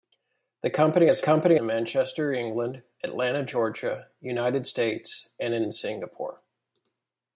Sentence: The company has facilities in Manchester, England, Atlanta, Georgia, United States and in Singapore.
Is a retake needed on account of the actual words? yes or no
yes